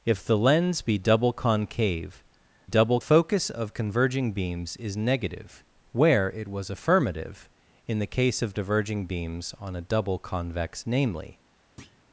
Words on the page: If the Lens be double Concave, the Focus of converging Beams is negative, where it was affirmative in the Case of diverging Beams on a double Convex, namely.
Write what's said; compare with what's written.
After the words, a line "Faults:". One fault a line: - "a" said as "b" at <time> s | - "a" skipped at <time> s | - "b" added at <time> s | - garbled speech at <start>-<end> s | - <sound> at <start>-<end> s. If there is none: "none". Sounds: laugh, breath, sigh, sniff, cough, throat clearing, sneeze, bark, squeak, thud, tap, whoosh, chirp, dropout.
If the Lens be double Concave, double Focus of converging Beams is negative, where it was affirmative in the Case of diverging Beams on a double Convex, namely.
Faults:
- "the" said as "double" at 2.6 s
- thud at 11.8-12.0 s